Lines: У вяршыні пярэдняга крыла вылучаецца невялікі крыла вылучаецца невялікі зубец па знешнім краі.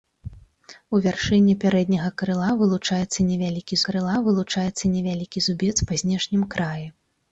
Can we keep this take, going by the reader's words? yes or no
yes